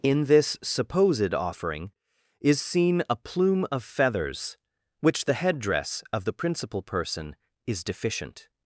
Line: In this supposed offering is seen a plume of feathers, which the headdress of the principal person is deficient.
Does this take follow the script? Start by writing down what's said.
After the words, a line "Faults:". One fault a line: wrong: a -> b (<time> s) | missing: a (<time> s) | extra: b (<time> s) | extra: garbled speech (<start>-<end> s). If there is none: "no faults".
In this supposed offering is seen a plume of feathers, which the headdress of the principal person is deficient.
Faults:
no faults